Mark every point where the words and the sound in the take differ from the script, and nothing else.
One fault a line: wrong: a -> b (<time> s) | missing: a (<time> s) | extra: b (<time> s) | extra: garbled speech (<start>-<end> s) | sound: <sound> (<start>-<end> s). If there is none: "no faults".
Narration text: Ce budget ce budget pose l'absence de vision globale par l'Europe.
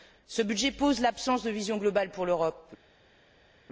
missing: ce budget (0.7 s)
wrong: par -> pour (2.1 s)